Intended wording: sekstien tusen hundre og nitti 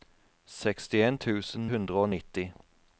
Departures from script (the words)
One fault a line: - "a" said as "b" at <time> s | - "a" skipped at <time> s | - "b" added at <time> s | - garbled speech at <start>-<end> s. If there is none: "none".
none